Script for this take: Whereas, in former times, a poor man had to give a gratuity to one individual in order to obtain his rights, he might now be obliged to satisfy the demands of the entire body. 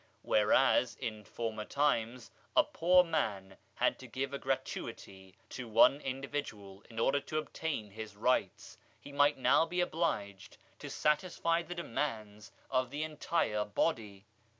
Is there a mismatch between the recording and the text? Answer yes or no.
no